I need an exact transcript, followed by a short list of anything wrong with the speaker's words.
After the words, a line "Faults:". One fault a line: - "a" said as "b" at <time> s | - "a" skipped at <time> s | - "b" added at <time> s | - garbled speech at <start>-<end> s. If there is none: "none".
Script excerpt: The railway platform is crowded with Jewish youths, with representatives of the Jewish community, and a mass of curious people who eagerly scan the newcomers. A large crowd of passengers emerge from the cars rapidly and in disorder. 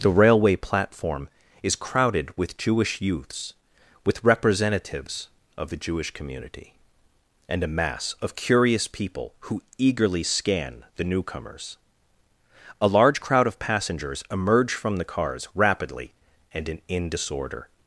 The railway platform is crowded with Jewish youths, with representatives of the Jewish community, and a mass of curious people who eagerly scan the newcomers. A large crowd of passengers emerge from the cars rapidly and in in disorder.
Faults:
- "in" added at 16.9 s